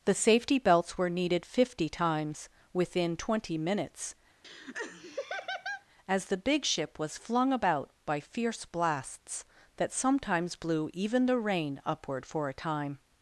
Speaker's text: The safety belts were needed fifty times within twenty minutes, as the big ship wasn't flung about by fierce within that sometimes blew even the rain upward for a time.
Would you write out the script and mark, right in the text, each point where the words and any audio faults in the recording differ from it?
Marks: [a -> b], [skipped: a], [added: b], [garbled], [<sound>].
The safety belts were needed fifty times within twenty minutes, [laugh] as the big ship [wasn't -> was] flung about by fierce [within -> blasts] that sometimes blew even the rain upward for a time.